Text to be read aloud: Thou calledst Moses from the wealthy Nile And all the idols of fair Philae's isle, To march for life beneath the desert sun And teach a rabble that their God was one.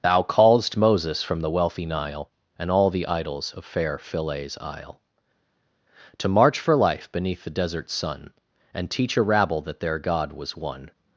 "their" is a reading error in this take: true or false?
false